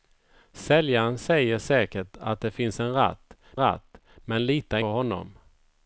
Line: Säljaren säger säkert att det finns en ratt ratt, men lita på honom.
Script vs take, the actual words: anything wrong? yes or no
no